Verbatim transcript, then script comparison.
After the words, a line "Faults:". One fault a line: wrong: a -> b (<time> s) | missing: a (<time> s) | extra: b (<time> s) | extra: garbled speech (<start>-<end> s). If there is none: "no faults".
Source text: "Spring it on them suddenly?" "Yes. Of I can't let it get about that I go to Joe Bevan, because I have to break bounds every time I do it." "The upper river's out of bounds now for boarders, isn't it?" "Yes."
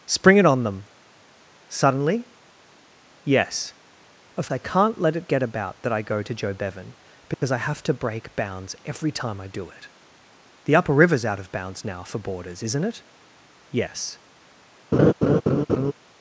"Spring it on them suddenly?" "Yes. Of I can't let it get about that I go to Joe Bevan, because I have to break bounds every time I do it." "The upper river's out of bounds now for boarders, isn't it?" "Yes."
Faults:
no faults